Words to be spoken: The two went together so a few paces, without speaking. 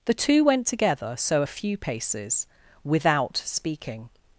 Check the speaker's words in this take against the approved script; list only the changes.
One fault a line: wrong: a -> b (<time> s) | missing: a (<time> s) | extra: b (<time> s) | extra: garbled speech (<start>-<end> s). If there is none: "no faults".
no faults